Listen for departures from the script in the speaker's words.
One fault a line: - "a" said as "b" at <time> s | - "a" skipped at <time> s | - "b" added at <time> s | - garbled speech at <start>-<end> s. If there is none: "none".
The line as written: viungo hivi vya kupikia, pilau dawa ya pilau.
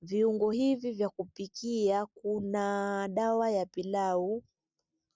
- "pilau" said as "kuna" at 2.1 s